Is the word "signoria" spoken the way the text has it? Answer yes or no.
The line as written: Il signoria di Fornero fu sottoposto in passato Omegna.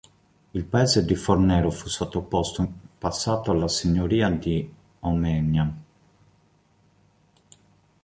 no